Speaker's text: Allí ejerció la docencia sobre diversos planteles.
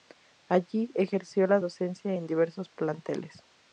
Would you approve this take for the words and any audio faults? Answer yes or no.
no